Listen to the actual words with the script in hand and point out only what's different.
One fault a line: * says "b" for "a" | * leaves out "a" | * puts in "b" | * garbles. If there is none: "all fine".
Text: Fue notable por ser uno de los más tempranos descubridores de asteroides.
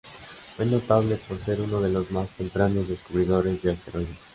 all fine